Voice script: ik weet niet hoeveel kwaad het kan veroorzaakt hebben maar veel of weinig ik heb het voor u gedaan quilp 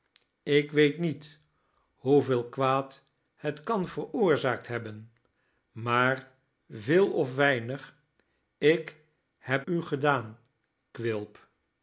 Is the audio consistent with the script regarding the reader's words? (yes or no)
no